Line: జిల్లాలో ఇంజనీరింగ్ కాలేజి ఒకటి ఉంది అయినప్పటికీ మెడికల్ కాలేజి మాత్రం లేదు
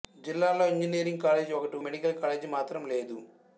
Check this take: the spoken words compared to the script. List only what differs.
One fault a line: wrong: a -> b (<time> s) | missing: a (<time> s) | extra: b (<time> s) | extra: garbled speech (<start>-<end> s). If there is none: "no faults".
missing: ఉంది అయినప్పటికీ (1.8 s)